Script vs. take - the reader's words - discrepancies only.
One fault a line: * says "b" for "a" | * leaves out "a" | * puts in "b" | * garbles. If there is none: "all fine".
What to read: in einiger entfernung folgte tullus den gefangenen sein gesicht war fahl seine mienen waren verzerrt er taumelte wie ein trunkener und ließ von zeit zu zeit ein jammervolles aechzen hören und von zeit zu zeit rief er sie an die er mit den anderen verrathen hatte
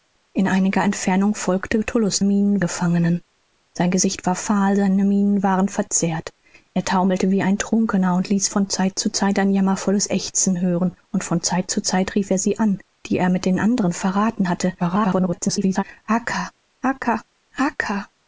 * says "mienen" for "den"
* garbles